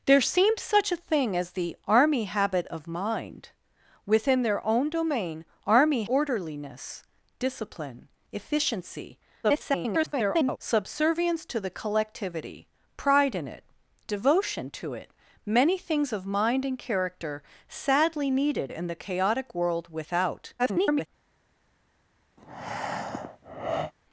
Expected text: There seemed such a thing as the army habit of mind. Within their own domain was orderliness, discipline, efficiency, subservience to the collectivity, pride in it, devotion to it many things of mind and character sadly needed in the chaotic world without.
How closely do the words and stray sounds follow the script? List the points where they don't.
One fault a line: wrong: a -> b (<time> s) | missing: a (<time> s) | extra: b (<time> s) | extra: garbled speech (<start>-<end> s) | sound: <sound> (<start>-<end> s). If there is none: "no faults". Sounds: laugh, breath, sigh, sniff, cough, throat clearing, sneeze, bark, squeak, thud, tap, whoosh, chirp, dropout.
wrong: was -> army (5.7 s)
extra: garbled speech (9.4-10.6 s)
extra: garbled speech (20.6-21.1 s)
sound: breath (22.4-23.9 s)